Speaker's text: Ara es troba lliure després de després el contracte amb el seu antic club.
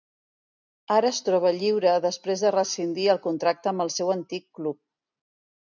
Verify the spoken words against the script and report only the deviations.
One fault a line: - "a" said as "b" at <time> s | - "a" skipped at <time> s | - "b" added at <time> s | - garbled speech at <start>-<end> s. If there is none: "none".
- "després" said as "rescindir" at 2.6 s